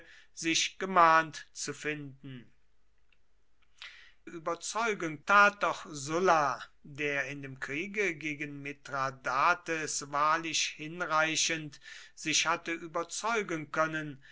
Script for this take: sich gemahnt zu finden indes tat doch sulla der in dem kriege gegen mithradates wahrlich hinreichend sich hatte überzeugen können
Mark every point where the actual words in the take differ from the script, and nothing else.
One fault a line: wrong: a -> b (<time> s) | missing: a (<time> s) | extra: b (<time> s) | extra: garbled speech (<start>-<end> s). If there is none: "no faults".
wrong: indes -> überzeugen (4.2 s)